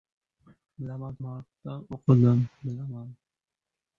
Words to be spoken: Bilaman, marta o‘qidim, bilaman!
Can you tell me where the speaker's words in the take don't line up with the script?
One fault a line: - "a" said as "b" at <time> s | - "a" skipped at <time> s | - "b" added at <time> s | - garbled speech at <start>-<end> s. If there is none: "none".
none